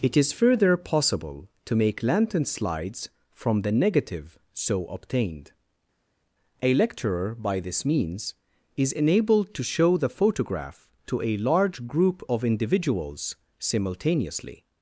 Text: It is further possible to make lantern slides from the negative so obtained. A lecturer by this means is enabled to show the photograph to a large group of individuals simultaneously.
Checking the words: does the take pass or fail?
pass